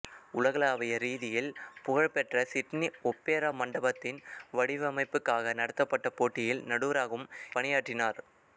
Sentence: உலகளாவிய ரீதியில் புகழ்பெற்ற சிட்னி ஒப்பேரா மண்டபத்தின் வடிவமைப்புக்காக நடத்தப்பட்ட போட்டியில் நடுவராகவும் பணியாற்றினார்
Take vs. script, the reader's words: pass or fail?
pass